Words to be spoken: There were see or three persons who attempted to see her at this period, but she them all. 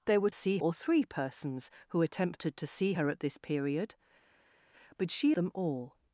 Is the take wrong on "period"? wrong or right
right